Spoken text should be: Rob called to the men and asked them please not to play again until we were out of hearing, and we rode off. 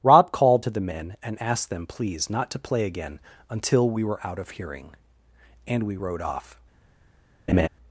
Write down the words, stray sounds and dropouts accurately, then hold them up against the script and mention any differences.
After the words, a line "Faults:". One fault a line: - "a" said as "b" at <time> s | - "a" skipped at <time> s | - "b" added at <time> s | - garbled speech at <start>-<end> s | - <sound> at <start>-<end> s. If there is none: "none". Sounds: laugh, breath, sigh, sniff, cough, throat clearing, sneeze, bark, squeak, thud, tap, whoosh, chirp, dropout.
Rob called to the men and asked them please not to play again until we were out of hearing, and we rode off.
Faults:
- laugh at 7.5-7.7 s